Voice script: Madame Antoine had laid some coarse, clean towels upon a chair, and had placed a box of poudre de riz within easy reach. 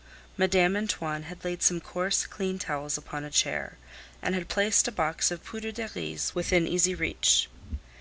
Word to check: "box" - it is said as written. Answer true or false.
true